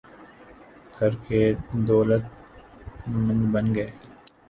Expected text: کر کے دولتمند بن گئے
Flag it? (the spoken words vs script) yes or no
no